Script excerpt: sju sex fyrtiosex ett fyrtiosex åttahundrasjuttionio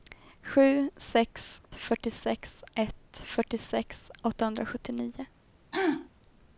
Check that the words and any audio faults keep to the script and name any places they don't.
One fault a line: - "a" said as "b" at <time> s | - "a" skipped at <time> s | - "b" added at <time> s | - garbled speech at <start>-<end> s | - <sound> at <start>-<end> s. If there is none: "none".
- throat clearing at 5.7-6.1 s